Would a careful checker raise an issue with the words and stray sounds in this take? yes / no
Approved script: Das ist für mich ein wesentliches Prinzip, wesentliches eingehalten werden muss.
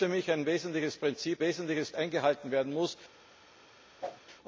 yes